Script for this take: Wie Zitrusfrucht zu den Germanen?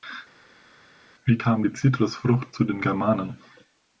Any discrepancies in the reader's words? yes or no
yes